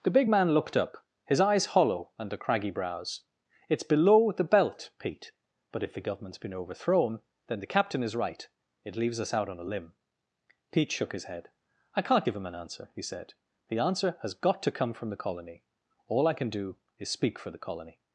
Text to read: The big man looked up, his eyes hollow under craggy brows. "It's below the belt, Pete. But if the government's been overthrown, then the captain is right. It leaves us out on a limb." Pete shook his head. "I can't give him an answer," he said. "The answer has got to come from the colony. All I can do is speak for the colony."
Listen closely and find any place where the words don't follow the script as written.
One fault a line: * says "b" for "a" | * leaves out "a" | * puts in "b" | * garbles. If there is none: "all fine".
all fine